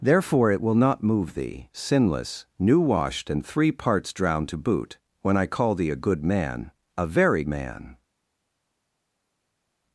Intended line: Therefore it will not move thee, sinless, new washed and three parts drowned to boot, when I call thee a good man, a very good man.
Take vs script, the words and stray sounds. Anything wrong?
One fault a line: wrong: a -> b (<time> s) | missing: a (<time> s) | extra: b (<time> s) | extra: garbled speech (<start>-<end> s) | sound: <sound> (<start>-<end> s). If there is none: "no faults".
missing: good (7.4 s)